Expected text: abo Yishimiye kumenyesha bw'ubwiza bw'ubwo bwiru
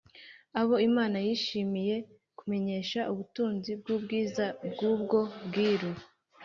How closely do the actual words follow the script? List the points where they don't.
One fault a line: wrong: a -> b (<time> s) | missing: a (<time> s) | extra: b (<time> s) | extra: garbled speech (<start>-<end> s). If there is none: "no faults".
extra: Imana (0.9 s)
extra: ubutunzi (3.1 s)